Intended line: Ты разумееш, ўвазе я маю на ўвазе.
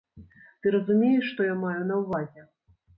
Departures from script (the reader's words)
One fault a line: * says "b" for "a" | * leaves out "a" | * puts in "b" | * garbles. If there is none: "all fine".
* says "што" for "ўвазе"